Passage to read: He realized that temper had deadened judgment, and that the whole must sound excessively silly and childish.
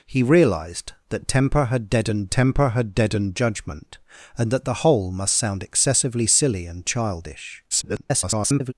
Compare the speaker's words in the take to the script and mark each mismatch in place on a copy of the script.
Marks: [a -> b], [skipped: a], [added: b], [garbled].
He realized that temper had deadened [added: temper had deadened] judgment, and that the whole must sound excessively silly and childish. [garbled]